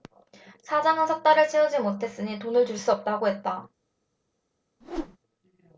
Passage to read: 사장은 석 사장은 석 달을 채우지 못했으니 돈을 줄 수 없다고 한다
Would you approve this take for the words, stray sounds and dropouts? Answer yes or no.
no